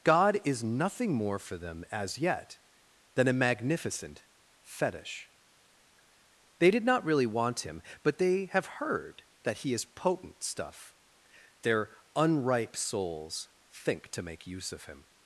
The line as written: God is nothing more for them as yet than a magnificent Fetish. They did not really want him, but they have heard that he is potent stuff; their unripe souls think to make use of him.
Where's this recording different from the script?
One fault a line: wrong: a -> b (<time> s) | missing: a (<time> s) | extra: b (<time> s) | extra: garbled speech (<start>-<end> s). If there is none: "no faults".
no faults